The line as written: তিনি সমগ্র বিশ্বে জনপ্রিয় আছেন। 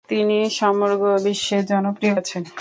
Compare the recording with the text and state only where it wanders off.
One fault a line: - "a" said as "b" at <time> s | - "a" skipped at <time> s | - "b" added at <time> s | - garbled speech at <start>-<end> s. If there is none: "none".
none